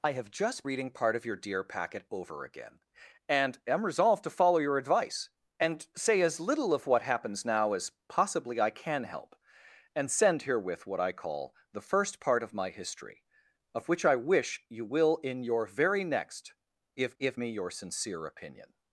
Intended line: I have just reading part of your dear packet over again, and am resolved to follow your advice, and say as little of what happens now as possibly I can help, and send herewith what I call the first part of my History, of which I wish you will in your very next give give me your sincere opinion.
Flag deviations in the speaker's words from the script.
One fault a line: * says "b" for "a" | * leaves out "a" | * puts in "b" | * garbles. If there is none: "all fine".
all fine